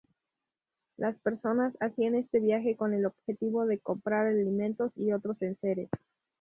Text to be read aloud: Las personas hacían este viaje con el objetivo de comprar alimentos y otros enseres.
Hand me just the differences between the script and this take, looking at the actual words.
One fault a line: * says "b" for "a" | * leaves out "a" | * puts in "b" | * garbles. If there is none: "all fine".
all fine